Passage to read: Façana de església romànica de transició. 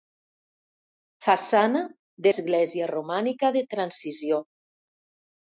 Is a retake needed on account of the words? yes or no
no